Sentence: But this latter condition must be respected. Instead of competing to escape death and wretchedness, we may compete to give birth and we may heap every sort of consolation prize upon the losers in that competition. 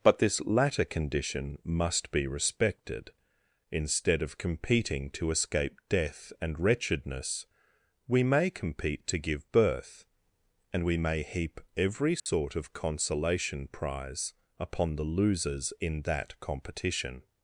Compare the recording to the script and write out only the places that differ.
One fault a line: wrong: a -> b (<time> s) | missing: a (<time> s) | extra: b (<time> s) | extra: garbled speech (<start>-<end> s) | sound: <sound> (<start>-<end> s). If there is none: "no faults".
sound: dropout (12.2-12.3 s)